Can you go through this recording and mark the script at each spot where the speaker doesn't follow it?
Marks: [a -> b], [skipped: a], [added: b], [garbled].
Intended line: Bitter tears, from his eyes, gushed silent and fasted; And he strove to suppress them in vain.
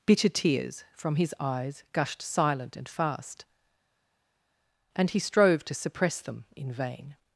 Bitter tears, from his eyes, gushed silent and [fasted; -> fast] And he strove to suppress them in vain.